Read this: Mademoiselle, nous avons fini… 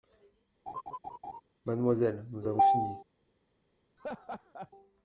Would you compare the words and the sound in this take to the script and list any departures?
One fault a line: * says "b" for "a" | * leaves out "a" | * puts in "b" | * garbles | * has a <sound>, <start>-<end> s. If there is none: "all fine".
* has a laugh, 0.7-1.4 s
* has a laugh, 4.0-4.7 s